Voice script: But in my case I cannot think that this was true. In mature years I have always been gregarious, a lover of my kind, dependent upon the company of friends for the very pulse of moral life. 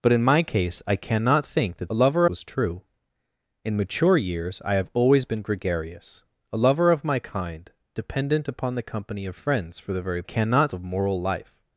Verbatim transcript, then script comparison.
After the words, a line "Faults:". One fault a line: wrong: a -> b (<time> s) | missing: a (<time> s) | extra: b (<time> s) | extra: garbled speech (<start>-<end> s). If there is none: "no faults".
But in my case I cannot think that lover was true. In mature years I have always been gregarious, a lover of my kind, dependent upon the company of friends for the very cannot of moral life.
Faults:
wrong: this -> lover (1.9 s)
wrong: pulse -> cannot (10.2 s)